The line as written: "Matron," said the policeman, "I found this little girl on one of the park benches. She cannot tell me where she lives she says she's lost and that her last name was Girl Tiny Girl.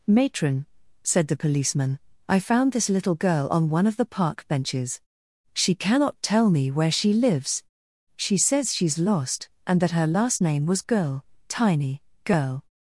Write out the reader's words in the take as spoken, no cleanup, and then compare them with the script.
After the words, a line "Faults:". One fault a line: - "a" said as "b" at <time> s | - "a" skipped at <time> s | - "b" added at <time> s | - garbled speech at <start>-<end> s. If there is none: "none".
"Matron," said the policeman, "I found this little girl on one of the park benches. She cannot tell me where she lives she says she's lost and that her last name was Girl Tiny Girl.
Faults:
none